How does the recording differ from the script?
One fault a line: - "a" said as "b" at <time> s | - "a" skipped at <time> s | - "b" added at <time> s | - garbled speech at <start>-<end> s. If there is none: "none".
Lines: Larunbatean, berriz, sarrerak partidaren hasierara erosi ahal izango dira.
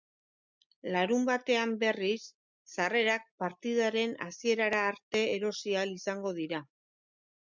- "arte" added at 4.9 s